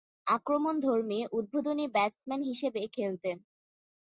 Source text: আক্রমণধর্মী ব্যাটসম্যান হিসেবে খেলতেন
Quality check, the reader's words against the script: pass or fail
fail